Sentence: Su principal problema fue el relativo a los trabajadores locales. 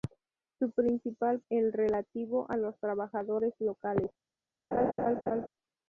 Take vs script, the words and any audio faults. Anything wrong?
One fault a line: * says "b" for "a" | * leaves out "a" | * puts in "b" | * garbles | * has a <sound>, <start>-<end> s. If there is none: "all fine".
* leaves out "problema fue"
* has a laugh, 4.7-5.5 s